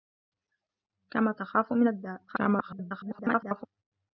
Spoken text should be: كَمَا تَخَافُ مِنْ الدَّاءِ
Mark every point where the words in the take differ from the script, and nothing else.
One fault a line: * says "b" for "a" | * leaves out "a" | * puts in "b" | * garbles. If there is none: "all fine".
* garbles